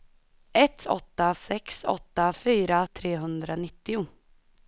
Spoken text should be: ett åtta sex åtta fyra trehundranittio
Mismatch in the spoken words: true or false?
false